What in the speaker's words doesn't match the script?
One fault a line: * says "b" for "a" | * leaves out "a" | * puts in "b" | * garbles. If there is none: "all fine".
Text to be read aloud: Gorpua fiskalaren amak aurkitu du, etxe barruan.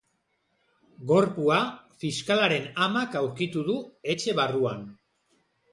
all fine